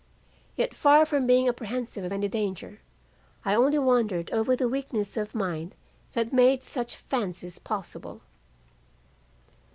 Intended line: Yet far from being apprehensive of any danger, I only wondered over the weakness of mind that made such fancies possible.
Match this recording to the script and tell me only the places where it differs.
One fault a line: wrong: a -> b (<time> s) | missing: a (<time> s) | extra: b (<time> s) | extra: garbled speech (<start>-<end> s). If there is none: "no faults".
no faults